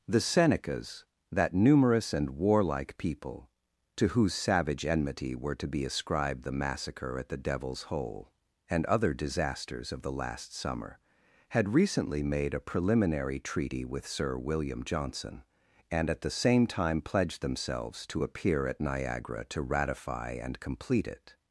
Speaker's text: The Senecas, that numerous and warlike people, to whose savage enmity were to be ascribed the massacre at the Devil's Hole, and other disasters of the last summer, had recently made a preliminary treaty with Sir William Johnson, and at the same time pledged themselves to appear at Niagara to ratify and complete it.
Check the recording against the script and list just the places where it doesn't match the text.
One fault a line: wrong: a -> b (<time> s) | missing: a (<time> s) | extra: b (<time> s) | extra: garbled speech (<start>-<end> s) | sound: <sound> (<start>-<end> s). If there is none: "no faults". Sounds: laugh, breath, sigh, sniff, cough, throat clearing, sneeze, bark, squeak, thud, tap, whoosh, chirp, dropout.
no faults